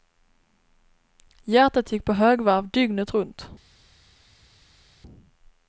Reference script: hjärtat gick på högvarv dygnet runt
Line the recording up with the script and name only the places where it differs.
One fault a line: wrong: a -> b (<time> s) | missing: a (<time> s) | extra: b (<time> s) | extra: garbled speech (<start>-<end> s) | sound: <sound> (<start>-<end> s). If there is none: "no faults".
no faults